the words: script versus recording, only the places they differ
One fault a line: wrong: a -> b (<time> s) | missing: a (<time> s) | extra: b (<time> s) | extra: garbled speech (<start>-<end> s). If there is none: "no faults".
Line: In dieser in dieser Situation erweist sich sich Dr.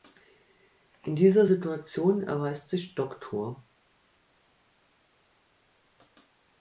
missing: in dieser (1.4 s)
missing: sich (2.9 s)